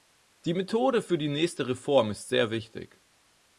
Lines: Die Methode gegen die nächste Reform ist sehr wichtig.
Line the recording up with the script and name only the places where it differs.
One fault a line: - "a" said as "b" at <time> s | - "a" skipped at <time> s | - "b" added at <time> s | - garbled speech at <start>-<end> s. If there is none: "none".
- "gegen" said as "für" at 1.0 s